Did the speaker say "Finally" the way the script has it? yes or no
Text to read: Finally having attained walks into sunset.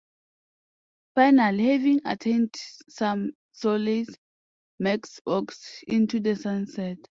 yes